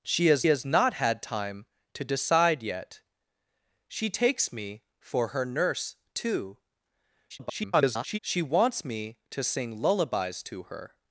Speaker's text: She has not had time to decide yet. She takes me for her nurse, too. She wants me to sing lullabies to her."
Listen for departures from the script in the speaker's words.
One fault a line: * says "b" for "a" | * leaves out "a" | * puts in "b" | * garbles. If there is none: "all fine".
* puts in "has"
* garbles